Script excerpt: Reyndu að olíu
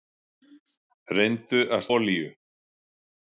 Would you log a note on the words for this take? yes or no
no